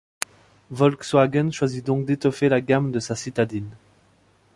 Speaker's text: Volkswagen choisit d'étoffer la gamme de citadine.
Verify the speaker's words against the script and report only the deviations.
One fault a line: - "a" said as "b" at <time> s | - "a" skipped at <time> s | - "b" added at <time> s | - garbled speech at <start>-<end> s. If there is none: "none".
- "donc" added at 1.9 s
- "sa" added at 3.0 s